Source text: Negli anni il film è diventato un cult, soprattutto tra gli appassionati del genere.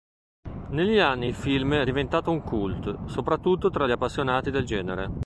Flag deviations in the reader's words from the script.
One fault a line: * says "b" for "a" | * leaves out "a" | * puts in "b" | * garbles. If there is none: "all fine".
all fine